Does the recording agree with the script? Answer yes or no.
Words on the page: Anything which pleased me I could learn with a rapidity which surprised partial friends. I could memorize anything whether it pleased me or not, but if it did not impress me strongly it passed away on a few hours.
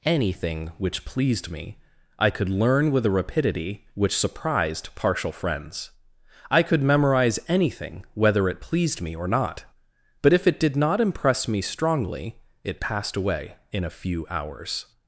no